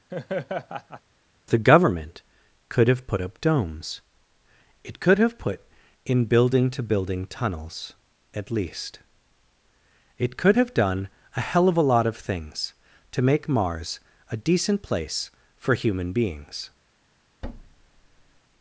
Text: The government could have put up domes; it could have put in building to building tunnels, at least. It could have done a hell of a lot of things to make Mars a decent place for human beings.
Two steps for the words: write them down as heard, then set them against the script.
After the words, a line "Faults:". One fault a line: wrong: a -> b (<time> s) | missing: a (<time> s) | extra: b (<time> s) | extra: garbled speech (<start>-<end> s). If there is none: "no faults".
The government could have put up domes; it could have put in building to building tunnels, at least. It could have done a hell of a lot of things to make Mars a decent place for human beings.
Faults:
no faults